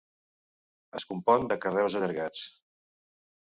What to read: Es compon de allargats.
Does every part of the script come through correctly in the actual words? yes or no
no